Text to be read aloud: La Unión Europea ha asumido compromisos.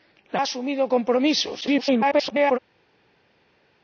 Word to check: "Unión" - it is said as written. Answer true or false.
false